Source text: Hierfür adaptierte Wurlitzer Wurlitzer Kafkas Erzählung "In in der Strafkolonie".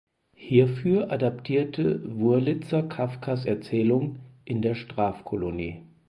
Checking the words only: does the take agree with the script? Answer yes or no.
no